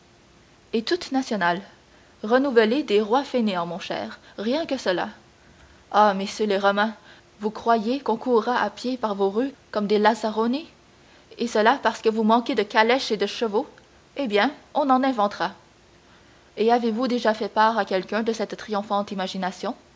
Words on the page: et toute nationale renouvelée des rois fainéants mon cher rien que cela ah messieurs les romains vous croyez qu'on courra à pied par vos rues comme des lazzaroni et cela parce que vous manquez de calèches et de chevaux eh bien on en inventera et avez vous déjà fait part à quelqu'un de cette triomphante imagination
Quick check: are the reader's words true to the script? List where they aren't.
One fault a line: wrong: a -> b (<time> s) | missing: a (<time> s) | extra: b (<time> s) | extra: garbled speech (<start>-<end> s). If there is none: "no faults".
no faults